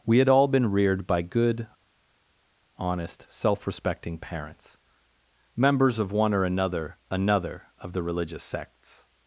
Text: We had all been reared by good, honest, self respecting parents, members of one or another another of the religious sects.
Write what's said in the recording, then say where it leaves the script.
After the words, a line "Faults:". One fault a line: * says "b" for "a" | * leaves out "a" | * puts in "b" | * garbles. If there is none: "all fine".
We had all been reared by good, honest, self respecting parents, members of one or another another of the religious sects.
Faults:
all fine